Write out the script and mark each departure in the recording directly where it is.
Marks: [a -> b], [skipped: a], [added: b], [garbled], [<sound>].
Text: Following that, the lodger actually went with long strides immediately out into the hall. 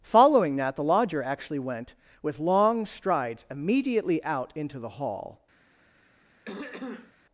Following that, the lodger actually went with long strides immediately out into the hall. [throat clearing]